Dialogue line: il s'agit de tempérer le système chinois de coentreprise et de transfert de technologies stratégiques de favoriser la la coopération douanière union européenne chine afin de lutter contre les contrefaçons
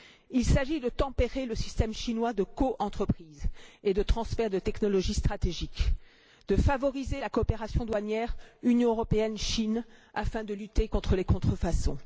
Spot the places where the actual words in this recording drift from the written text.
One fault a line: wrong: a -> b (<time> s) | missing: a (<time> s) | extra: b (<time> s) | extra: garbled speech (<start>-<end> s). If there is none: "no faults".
missing: la (7.3 s)